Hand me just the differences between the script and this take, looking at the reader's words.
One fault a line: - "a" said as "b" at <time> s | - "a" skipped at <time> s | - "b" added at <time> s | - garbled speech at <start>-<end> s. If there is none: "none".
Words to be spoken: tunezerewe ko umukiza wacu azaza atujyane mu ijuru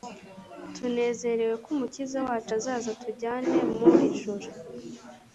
none